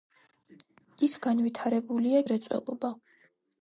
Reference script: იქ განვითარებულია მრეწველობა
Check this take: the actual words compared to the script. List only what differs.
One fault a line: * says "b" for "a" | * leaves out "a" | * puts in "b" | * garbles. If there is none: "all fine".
all fine